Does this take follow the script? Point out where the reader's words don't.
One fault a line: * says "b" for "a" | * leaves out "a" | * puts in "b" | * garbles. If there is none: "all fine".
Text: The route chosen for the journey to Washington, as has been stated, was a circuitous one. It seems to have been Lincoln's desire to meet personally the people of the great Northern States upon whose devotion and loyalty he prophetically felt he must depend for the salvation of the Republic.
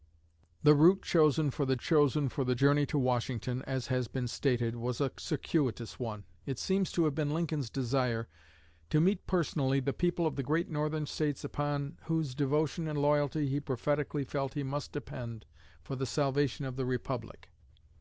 * puts in "chosen for the"